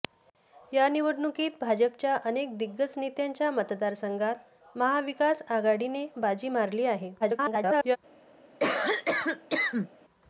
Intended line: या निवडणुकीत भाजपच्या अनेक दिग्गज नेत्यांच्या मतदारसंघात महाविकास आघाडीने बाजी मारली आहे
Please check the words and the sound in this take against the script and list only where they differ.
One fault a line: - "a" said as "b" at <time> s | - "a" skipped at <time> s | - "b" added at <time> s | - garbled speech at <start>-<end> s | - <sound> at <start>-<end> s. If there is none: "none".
- garbled speech at 7.2-8.0 s
- cough at 8.6-9.9 s